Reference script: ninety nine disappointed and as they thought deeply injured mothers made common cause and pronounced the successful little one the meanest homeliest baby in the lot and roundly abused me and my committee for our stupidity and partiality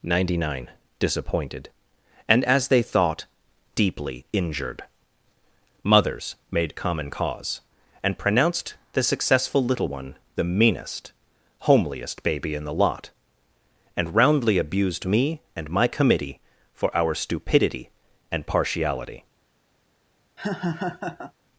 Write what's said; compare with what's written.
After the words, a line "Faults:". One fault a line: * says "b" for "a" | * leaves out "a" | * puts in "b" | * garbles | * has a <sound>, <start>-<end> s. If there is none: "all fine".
ninety nine disappointed and as they thought deeply injured mothers made common cause and pronounced the successful little one the meanest homeliest baby in the lot and roundly abused me and my committee for our stupidity and partiality
Faults:
* has a laugh, 20.4-21.3 s